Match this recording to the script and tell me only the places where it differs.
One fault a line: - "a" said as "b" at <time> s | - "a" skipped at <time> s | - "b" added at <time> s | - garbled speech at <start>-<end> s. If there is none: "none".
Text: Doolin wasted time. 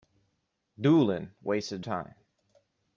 none